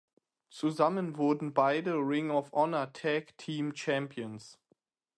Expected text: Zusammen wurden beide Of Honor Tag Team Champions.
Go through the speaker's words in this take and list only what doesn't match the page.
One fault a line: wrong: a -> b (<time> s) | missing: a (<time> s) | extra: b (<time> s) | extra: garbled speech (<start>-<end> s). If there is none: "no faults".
extra: Ring (2.0 s)